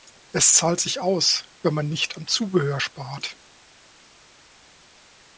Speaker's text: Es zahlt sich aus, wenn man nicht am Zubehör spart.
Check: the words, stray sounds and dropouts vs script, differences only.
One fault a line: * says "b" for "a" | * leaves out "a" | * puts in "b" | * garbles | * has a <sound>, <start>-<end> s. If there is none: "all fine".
all fine